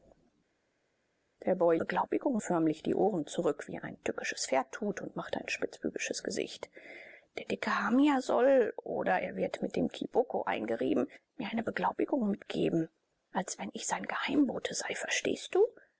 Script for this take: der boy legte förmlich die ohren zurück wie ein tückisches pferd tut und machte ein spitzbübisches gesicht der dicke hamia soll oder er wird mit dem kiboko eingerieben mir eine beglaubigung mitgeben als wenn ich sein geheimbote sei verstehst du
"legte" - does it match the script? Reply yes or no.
no